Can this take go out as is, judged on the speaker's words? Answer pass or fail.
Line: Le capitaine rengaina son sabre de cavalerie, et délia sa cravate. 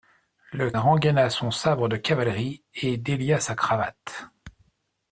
fail